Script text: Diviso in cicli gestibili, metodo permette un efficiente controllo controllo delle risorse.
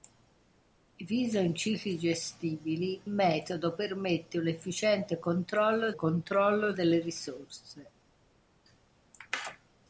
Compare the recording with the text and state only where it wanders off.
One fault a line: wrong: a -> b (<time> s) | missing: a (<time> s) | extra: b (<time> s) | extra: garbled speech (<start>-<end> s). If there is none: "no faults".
no faults